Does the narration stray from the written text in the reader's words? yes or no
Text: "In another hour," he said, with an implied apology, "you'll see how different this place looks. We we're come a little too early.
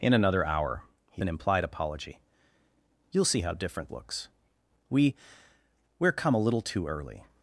yes